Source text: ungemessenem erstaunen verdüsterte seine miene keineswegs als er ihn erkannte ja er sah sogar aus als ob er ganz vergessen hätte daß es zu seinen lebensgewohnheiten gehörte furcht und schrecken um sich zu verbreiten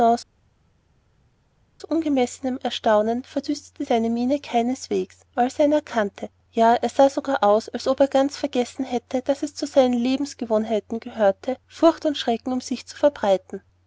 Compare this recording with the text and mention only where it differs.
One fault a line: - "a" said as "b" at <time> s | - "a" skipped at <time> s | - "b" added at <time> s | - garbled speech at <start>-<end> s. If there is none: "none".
none